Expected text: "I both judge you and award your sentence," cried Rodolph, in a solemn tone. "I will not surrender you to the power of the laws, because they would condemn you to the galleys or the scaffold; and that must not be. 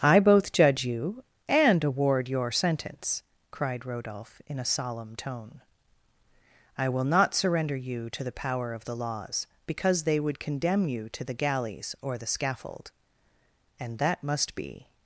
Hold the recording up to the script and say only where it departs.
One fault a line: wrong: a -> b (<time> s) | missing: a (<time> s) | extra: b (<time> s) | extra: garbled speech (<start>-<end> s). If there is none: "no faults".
missing: not (14.6 s)